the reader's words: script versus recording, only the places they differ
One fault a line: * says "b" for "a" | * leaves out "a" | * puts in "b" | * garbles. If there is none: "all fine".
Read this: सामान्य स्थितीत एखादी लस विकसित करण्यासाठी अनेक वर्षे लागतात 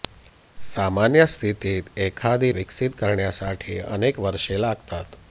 * leaves out "लस"